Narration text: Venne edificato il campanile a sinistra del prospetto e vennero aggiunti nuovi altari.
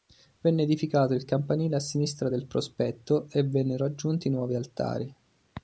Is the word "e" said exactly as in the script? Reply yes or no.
yes